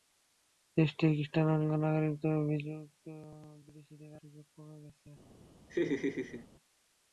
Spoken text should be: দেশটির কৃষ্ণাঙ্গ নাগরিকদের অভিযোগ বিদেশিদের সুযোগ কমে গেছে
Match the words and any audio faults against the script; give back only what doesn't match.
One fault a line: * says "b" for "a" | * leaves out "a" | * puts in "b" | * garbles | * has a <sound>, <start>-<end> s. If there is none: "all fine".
* has a laugh, 5.7-6.5 s